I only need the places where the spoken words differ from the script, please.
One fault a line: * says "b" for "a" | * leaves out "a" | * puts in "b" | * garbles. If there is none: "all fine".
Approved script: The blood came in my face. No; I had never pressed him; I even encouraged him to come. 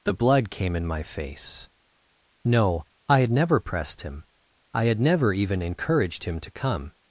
* puts in "had never"